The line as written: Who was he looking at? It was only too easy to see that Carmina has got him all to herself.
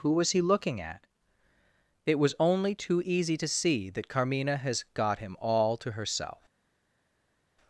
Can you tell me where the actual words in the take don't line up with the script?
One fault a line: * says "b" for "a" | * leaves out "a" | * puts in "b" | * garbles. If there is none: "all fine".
all fine